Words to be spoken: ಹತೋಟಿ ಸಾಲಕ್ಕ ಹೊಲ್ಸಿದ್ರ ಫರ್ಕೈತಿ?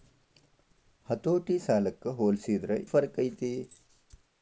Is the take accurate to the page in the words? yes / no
yes